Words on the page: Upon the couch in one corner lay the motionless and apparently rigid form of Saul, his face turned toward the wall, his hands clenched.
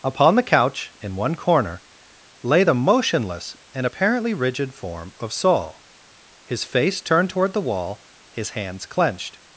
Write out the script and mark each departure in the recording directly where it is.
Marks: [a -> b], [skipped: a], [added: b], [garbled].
Upon the couch in one corner lay the motionless and apparently rigid form of Saul, his face turned toward the wall, his hands clenched.